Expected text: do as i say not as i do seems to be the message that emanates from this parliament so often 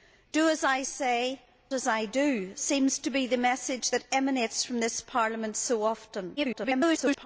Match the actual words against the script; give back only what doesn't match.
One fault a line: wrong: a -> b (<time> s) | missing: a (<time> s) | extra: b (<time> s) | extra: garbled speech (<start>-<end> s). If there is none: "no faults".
missing: not (1.4 s)
extra: garbled speech (6.4-7.3 s)